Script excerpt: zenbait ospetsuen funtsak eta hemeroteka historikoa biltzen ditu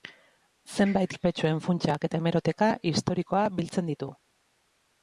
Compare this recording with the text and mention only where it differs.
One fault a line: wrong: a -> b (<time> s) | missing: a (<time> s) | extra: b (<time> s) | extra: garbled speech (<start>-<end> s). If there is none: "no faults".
no faults